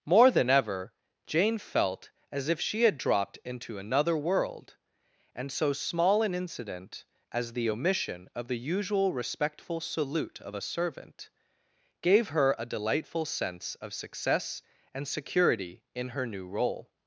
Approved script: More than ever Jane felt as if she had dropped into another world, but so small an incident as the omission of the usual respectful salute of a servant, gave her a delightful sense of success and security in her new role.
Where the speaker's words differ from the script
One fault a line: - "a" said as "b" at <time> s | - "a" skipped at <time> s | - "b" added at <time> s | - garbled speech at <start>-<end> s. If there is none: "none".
- "but" said as "and" at 5.3 s